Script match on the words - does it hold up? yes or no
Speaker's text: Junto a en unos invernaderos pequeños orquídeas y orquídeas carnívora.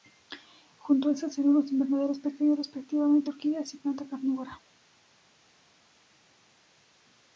no